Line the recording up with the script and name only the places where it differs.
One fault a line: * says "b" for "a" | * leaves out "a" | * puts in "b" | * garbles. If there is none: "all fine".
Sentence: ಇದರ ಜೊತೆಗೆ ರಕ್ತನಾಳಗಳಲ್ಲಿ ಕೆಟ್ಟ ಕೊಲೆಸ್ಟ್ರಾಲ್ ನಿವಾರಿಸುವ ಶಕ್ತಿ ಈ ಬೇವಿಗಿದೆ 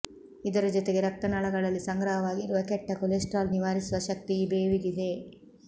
* puts in "ಸಂಗ್ರಹವಾಗಿರುವ"